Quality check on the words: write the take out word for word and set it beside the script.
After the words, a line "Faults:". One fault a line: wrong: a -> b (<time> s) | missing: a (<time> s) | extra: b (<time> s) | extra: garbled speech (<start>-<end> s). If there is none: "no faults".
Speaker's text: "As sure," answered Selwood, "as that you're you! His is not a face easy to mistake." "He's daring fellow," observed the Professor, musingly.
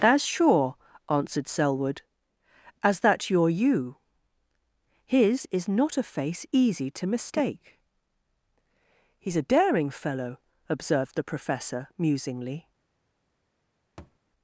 "As sure," answered Selwood, "as that you're you! His is not a face easy to mistake." "He's a daring fellow," observed the Professor, musingly.
Faults:
extra: a (9.3 s)